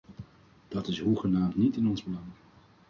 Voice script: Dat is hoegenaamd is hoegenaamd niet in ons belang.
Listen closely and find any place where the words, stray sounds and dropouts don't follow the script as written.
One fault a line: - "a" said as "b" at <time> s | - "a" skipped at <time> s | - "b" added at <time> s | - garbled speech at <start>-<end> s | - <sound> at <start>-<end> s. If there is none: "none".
- "is hoegenaamd" skipped at 1.6 s